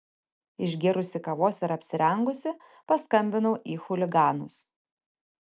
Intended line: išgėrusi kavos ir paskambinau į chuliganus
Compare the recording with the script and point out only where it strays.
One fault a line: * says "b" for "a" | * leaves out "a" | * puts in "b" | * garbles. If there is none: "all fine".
* puts in "apsirengusi"